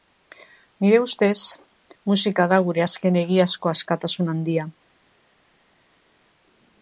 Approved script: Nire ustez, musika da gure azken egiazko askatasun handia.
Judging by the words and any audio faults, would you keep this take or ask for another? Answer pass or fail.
pass